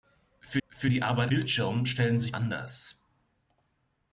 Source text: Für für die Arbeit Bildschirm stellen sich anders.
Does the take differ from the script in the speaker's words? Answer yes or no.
no